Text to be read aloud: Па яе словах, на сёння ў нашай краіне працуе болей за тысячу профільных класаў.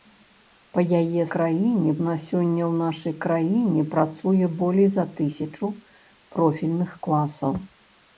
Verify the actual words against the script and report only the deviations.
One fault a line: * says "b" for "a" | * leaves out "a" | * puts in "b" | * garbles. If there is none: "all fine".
* says "краіне" for "словах"